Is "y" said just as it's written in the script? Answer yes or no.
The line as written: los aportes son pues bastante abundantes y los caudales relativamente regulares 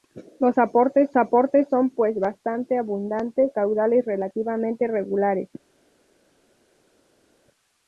no